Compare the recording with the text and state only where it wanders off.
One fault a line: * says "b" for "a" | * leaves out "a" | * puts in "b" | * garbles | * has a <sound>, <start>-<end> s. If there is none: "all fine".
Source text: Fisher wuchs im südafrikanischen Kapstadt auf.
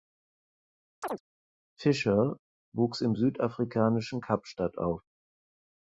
* has a chirp, 1.0-1.2 s